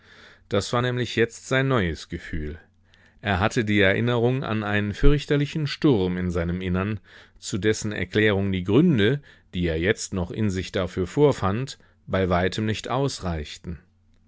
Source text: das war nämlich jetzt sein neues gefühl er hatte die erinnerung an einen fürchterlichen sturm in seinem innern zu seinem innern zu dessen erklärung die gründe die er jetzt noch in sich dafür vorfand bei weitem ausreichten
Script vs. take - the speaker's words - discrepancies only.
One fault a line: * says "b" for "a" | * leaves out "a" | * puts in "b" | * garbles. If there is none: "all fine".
* leaves out "seinem innern zu"
* puts in "nicht"